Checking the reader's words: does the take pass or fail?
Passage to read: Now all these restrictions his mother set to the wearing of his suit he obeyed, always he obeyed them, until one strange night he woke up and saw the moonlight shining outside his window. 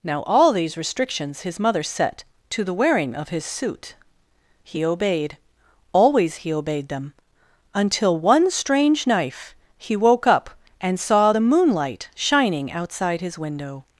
fail